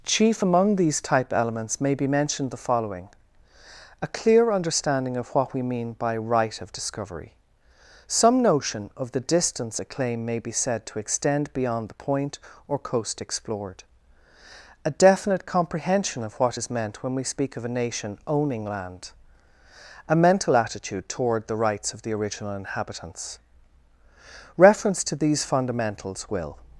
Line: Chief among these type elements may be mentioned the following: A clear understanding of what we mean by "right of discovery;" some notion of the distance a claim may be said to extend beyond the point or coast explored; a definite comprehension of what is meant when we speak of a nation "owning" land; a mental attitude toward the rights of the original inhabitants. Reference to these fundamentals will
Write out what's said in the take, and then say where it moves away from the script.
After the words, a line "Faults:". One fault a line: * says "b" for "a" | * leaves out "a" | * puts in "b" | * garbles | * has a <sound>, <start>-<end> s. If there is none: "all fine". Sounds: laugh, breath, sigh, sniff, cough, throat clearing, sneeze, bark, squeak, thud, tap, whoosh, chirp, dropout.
Chief among these type elements may be mentioned the following: A clear understanding of what we mean by "right of discovery;" some notion of the distance a claim may be said to extend beyond the point or coast explored; a definite comprehension of what is meant when we speak of a nation "owning" land; a mental attitude toward the rights of the original inhabitants. Reference to these fundamentals will
Faults:
all fine